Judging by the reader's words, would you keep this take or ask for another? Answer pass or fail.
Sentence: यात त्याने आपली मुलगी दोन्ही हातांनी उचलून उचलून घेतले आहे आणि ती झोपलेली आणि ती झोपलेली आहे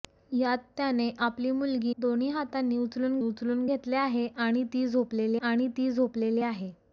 pass